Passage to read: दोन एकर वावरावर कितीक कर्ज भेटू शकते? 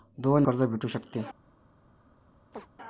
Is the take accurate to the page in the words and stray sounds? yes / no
no